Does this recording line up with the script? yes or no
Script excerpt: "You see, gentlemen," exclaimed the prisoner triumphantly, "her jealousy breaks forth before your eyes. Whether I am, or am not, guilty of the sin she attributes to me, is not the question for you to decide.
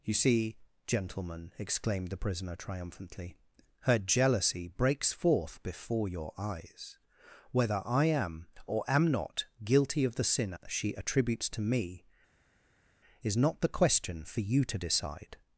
yes